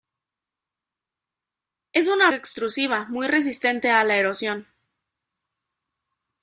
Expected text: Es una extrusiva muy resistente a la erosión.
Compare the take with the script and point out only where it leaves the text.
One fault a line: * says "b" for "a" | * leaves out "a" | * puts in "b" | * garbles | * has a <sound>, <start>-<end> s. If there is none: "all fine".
all fine